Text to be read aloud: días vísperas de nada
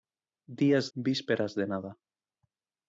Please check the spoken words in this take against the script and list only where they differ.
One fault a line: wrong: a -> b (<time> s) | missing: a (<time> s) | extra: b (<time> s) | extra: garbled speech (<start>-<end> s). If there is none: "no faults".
no faults